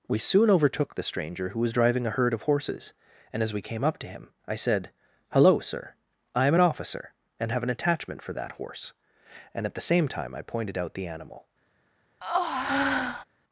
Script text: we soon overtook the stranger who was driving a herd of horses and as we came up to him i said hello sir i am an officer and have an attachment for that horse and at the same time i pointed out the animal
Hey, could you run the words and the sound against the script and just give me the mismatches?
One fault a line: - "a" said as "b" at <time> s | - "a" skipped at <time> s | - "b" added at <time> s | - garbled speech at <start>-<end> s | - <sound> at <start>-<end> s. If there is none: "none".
- breath at 12.2-13.2 s